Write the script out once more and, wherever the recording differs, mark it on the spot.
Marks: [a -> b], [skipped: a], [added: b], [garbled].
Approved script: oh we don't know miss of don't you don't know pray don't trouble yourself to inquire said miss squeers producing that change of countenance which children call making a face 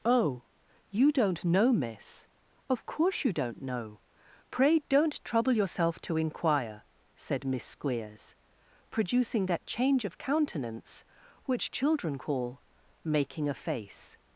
oh [we -> you] don't know miss of [don't -> course] you don't know pray don't trouble yourself to inquire said miss squeers producing that change of countenance which children call making a face